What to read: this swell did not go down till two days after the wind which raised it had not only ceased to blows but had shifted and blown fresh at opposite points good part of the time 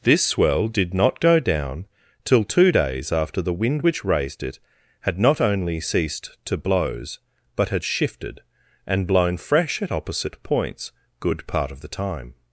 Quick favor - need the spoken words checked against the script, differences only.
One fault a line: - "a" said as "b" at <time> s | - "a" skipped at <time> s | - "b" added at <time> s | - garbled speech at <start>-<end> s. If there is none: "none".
none